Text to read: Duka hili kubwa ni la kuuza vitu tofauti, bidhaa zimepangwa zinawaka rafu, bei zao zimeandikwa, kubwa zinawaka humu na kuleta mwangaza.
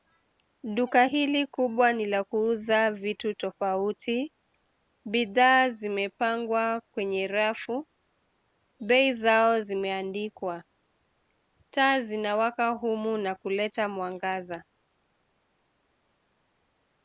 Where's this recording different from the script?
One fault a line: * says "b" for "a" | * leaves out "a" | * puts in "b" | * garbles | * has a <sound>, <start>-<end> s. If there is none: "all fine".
* says "kwenye" for "zinawaka"
* says "taa" for "kubwa"